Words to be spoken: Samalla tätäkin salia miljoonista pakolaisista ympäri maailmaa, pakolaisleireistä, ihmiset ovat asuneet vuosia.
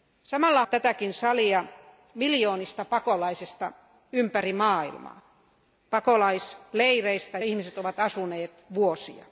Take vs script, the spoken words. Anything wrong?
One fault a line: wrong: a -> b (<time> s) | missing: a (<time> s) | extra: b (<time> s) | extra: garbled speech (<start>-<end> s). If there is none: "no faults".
no faults